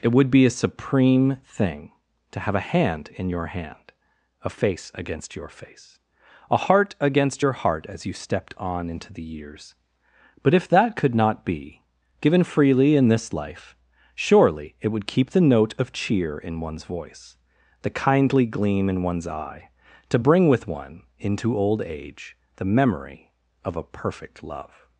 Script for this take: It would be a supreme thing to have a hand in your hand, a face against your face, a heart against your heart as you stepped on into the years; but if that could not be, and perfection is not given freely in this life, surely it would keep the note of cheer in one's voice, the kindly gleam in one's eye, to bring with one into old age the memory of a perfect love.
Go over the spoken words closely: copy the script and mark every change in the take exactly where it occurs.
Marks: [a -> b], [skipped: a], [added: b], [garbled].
It would be a supreme thing to have a hand in your hand, a face against your face, a heart against your heart as you stepped on into the years; but if that could not be, [skipped: and perfection is not] given freely in this life, surely it would keep the note of cheer in one's voice, the kindly gleam in one's eye, to bring with one into old age the memory of a perfect love.